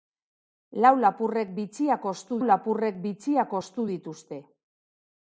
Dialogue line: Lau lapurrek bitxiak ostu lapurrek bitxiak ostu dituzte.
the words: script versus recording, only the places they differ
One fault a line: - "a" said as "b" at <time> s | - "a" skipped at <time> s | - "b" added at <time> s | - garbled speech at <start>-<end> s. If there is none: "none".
none